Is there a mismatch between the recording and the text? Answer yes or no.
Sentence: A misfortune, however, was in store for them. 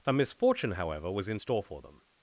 no